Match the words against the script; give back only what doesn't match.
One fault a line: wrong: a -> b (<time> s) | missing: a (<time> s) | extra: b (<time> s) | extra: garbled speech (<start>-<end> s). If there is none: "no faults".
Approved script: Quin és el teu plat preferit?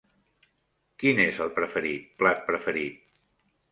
wrong: teu -> preferit (1.6 s)